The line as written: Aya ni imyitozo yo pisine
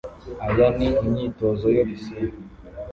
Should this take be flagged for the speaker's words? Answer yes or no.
no